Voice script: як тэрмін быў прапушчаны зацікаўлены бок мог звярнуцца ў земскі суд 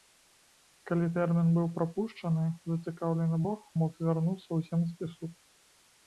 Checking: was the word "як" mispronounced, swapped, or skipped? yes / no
yes